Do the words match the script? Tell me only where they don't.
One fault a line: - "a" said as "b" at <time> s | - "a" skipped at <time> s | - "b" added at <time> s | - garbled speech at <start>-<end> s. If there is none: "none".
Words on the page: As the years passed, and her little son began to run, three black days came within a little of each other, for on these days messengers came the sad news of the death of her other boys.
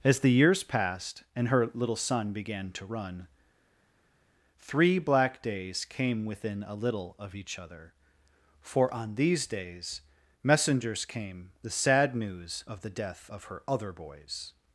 none